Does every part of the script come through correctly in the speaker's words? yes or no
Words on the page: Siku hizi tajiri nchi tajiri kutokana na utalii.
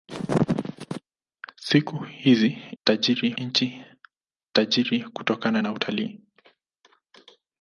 yes